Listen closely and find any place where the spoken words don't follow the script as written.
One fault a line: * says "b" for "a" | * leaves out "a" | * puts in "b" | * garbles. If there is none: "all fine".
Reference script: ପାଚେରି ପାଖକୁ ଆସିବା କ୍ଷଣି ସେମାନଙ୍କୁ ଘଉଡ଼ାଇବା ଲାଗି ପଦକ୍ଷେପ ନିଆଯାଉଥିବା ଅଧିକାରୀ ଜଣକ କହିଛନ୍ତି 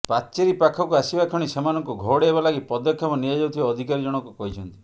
all fine